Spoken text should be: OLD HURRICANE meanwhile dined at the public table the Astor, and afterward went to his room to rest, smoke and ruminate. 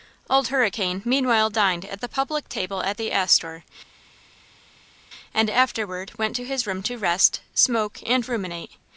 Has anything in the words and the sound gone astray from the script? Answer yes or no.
yes